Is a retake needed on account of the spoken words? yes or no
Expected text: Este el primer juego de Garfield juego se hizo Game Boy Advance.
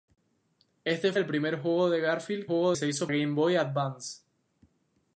no